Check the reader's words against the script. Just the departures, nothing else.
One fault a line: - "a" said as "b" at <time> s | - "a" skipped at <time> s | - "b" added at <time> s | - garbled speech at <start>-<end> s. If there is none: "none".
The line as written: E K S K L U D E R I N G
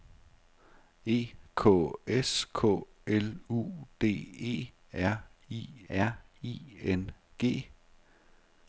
- "R I" added at 5.9 s